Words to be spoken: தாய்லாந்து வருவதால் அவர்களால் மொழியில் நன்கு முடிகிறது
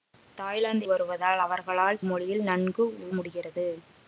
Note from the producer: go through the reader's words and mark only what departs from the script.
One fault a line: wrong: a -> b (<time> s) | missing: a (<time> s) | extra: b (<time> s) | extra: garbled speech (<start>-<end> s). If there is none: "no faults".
no faults